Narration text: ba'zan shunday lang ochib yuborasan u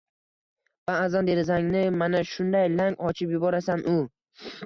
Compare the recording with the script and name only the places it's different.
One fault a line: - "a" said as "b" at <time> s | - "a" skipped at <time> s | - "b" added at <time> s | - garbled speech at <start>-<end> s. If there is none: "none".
- "derazangni mana" added at 1.3 s